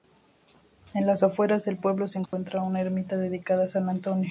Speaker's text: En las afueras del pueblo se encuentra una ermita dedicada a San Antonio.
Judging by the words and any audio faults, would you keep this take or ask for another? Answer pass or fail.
fail